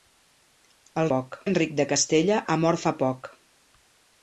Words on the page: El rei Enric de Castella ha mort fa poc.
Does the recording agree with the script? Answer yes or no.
no